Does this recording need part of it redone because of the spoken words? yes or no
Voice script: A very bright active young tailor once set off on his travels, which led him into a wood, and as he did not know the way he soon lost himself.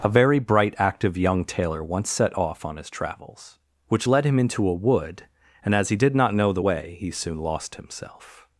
no